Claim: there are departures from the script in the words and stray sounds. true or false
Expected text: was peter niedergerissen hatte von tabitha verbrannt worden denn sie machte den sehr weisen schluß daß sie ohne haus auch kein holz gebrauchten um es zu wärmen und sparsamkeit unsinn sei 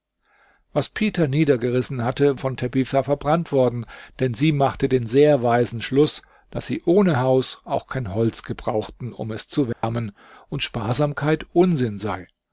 true